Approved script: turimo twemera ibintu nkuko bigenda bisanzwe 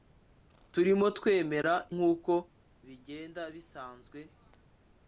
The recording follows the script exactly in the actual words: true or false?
false